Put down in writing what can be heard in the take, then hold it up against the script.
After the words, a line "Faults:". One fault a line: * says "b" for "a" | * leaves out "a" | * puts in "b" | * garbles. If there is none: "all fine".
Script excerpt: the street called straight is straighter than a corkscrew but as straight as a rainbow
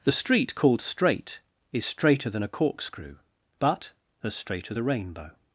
the street called straight is straighter than a corkscrew but as straight as a rainbow
Faults:
all fine